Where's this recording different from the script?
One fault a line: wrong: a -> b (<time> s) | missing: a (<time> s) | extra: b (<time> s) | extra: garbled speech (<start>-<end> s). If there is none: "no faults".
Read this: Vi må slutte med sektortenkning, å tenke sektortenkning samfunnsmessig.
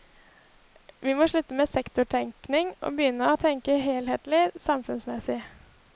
extra: og begynne (2.8 s)
wrong: sektortenkning -> helhetlig (3.8 s)